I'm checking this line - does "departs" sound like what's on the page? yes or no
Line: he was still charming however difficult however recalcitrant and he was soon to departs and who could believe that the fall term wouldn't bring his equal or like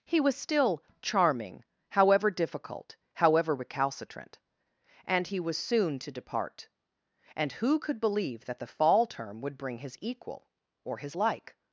no